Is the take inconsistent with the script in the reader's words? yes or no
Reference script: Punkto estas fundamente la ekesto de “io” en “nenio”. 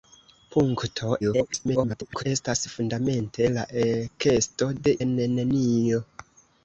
yes